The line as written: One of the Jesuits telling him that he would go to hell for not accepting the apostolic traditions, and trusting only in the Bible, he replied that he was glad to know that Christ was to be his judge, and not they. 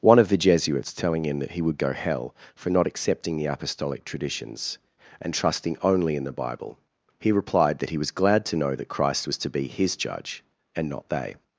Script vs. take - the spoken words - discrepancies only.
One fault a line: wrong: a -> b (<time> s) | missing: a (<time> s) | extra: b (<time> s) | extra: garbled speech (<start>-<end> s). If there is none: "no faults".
missing: to (1.9 s)